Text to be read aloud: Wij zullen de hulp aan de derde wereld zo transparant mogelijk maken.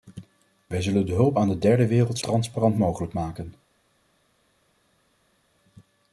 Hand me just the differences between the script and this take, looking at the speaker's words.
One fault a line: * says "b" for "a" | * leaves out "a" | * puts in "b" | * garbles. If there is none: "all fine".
* leaves out "zo"